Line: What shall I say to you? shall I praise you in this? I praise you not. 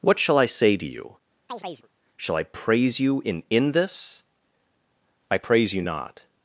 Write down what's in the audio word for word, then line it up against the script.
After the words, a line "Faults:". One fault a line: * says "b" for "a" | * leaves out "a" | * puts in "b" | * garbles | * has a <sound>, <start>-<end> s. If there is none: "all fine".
What shall I say to you? shall I praise you in in this? I praise you not.
Faults:
* has a chirp, 1.5-1.9 s
* puts in "in"